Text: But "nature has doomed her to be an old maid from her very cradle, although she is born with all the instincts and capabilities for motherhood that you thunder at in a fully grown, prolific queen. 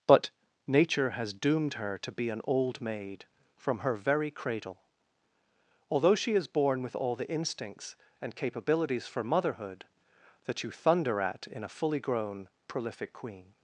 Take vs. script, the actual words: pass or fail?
pass